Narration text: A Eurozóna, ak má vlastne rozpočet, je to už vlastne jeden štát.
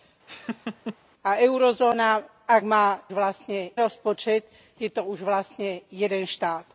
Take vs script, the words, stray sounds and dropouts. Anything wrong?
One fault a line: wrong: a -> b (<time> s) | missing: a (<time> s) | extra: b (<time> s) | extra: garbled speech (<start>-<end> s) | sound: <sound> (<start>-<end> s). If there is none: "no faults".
sound: laugh (0.3-1.0 s)